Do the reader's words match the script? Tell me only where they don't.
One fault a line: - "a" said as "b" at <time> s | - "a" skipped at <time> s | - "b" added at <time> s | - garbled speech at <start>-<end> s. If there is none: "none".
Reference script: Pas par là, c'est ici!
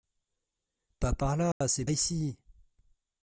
none